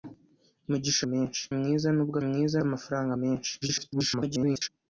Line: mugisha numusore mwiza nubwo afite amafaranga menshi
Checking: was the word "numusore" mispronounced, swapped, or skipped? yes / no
yes